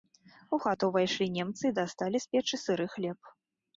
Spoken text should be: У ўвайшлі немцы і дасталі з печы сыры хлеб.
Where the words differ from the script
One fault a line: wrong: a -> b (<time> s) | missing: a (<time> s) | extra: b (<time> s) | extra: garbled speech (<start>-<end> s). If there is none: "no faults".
extra: хату (0.6 s)